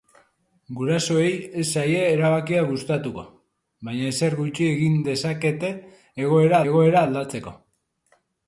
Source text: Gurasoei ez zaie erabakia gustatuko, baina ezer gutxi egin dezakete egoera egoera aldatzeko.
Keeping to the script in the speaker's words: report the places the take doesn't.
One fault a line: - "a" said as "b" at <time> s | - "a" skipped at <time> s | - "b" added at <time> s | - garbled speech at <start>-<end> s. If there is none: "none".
none